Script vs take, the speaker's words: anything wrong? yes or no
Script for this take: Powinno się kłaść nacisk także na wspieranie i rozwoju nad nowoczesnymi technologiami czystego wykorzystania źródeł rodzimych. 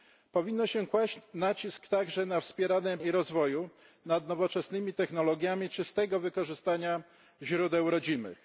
no